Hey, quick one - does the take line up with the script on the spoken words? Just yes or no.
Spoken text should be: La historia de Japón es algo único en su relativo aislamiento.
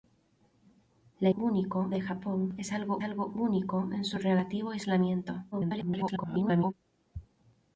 no